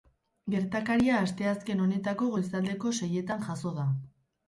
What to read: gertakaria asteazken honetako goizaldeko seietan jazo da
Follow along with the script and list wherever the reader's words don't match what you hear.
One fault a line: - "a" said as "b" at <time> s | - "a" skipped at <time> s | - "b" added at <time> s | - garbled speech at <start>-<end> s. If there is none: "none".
none